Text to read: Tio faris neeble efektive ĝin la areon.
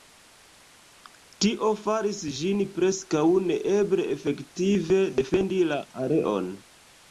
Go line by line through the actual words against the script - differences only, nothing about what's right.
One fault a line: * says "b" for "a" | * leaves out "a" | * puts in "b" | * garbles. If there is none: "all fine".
* puts in "ĝin preskaŭ"
* says "defendi" for "ĝin"